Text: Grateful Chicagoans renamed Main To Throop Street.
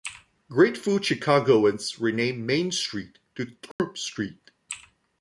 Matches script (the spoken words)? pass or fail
fail